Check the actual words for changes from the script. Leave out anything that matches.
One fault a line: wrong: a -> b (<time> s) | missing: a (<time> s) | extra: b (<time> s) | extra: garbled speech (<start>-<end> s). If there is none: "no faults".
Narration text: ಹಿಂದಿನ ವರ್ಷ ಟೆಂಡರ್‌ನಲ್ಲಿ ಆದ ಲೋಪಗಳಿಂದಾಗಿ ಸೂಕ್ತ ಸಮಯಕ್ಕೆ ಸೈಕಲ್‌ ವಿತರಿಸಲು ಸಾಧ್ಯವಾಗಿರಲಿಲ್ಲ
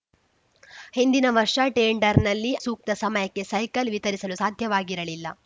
missing: ಆದ ಲೋಪಗಳಿಂದಾಗಿ (2.5 s)